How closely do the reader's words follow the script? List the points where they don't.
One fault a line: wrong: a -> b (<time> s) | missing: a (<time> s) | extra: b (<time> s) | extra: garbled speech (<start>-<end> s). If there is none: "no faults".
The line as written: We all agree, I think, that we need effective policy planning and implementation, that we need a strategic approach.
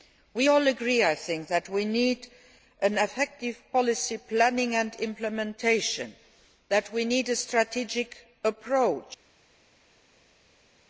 no faults